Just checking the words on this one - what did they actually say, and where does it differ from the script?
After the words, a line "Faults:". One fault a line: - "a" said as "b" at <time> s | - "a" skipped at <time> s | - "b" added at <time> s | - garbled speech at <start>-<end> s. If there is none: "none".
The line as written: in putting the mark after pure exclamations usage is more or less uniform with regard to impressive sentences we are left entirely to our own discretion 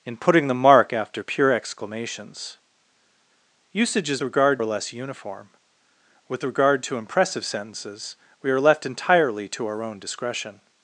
in putting the mark after pure exclamations usage is regard or less uniform with regard to impressive sentences we are left entirely to our own discretion
Faults:
- "more" said as "regard" at 4.2 s